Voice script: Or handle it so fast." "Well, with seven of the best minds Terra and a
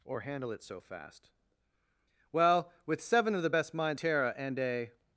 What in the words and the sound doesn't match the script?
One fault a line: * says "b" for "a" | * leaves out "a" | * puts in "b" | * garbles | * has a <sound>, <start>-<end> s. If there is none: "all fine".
all fine